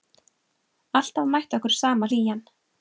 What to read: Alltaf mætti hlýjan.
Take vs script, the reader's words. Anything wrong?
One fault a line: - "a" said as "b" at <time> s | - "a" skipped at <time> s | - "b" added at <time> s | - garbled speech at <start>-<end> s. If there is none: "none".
- "okkur sama" added at 1.6 s